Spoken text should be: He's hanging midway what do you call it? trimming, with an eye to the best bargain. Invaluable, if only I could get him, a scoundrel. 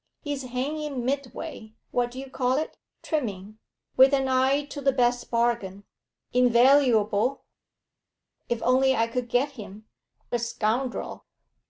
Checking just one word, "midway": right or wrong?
right